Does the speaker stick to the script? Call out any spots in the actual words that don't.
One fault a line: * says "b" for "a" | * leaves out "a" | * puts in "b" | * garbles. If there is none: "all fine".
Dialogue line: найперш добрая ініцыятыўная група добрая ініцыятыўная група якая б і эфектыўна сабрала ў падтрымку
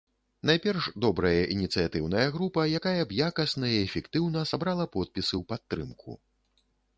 * leaves out "добрая ініцыятыўная група"
* puts in "якасна"
* puts in "подпісы"